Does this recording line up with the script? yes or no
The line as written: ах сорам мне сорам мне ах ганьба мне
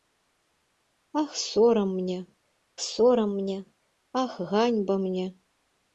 yes